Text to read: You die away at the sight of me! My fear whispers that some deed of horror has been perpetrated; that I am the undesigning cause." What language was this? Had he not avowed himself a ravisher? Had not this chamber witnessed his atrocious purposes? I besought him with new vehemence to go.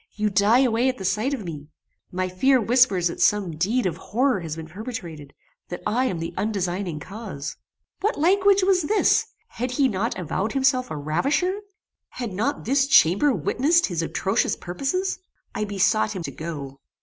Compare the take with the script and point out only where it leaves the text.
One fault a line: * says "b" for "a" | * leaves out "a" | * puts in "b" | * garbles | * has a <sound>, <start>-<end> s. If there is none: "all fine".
* leaves out "with new vehemence"